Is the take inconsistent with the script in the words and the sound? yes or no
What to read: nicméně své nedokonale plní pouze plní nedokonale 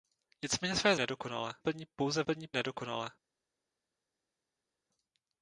no